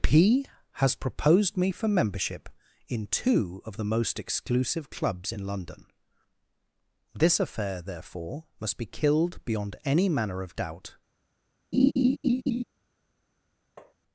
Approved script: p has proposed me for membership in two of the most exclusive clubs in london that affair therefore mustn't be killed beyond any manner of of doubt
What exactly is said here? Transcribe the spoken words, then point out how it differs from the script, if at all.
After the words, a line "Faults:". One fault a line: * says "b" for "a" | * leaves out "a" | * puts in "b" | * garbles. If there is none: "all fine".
p has proposed me for membership in two of the most exclusive clubs in london this affair therefore must be killed beyond any manner of doubt
Faults:
* says "this" for "that"
* says "must" for "mustn't"
* leaves out "of"